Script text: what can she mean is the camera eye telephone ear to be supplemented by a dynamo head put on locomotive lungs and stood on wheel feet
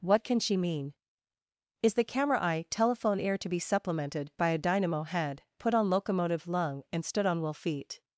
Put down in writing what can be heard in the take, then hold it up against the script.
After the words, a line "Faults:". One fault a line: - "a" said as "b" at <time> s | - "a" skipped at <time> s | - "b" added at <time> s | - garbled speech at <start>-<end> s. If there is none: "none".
what can she mean is the camera eye telephone ear to be supplemented by a dynamo head put on locomotive lung and stood on wheel feet
Faults:
- "lungs" said as "lung" at 6.5 s